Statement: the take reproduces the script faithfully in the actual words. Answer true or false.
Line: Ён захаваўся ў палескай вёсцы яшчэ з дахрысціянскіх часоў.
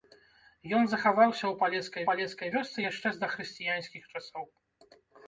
false